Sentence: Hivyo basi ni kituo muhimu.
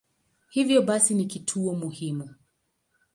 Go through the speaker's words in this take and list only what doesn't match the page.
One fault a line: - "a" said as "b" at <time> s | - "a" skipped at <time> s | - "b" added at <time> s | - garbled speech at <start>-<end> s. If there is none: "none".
none